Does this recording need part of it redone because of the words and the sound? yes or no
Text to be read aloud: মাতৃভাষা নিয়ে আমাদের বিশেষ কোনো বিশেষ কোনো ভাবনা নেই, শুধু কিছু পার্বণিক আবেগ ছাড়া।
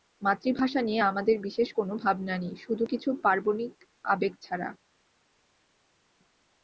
yes